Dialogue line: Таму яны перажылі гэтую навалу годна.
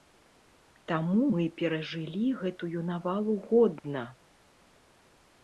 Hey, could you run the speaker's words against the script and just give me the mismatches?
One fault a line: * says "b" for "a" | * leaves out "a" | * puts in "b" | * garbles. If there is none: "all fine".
* says "мы" for "яны"